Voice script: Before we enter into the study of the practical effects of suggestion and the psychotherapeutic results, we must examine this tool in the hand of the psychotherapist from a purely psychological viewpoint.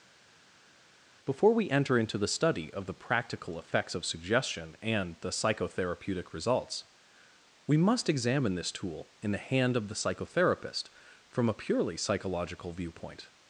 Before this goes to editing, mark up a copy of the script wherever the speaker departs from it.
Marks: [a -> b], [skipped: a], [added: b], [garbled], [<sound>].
Before we enter into the study of the practical effects of suggestion and the psychotherapeutic results, we must examine this tool in the hand of the psychotherapist from a purely psychological viewpoint.